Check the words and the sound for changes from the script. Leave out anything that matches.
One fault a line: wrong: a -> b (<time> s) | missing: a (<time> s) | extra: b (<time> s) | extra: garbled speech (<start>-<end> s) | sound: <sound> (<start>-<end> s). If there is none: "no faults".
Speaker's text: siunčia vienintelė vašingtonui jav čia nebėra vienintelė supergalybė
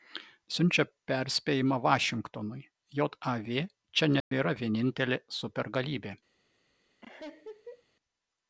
wrong: vienintelė -> perspėjimą (1.1 s)
sound: dropout (4.2-4.3 s)
sound: laugh (7.0-7.8 s)